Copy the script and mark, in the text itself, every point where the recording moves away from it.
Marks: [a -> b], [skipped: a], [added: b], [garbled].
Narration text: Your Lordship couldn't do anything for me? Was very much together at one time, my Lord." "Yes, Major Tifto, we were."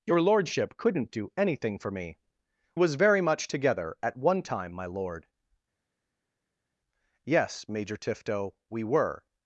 Your Lordship couldn't do anything for me? Was very much together at one time, my Lord." "Yes, Major Tifto, we were."